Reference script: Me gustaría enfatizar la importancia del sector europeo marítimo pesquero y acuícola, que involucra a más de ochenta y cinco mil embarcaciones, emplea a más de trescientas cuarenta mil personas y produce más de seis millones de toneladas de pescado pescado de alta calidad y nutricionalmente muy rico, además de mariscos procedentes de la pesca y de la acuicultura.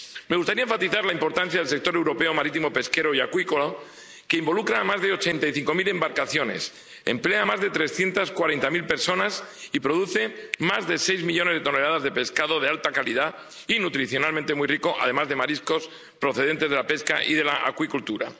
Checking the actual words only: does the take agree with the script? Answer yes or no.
no